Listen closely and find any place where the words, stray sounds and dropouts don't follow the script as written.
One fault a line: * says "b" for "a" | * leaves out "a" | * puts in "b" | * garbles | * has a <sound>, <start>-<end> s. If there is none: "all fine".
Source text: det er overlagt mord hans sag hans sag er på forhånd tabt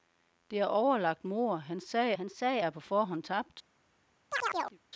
* has a chirp, 4.3-4.8 s